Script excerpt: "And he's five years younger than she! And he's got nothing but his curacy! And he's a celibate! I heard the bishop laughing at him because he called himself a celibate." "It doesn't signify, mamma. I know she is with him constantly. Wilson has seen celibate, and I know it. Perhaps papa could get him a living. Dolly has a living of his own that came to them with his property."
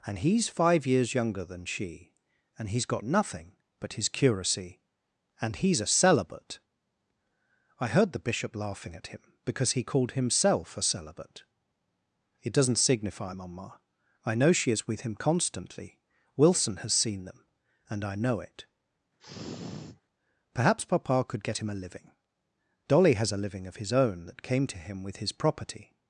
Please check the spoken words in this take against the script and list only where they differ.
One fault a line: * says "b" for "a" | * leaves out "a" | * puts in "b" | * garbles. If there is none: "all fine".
* says "them" for "celibate"
* says "him" for "them"